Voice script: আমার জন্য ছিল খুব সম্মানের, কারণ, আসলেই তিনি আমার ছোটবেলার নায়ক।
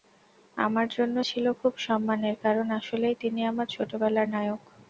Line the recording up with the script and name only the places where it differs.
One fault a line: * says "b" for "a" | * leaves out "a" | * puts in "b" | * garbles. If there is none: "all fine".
all fine